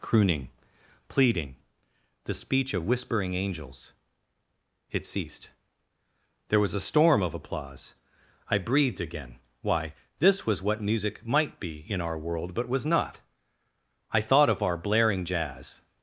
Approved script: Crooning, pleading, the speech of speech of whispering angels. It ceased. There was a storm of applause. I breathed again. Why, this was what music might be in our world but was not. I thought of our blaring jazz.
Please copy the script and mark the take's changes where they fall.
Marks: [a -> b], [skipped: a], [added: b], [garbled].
Crooning, pleading, the speech of [skipped: speech of] whispering angels. It ceased. There was a storm of applause. I breathed again. Why, this was what music might be in our world but was not. I thought of our blaring jazz.